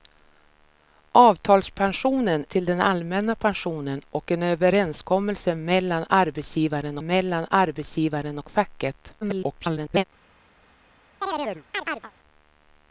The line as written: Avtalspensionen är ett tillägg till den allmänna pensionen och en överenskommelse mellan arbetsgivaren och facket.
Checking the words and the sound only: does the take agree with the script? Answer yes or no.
no